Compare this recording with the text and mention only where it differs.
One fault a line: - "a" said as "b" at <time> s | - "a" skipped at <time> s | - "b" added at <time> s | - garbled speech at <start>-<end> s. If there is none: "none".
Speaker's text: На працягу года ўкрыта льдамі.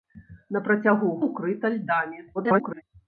- "года" skipped at 1.1 s
- garbled speech at 2.3-2.8 s